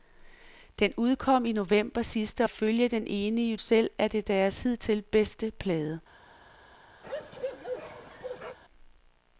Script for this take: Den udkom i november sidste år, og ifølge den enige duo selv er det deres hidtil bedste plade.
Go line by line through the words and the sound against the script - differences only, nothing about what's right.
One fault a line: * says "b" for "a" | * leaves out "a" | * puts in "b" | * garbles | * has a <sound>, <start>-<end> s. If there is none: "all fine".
* leaves out "år og"
* leaves out "duo"
* has a bark, 7.0-8.6 s